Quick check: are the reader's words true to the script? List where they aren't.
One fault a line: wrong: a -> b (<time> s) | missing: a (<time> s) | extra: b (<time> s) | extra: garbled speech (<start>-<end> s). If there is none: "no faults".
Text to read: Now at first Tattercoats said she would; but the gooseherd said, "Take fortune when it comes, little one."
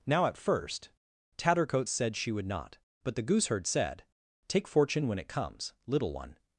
extra: not (2.5 s)